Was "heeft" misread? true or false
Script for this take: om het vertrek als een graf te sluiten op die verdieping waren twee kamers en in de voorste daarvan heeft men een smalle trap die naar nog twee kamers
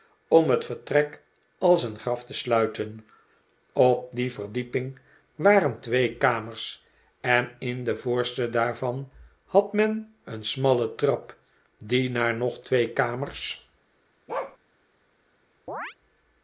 true